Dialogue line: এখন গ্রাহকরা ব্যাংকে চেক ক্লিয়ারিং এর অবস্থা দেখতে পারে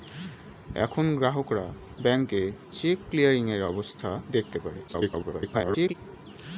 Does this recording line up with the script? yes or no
no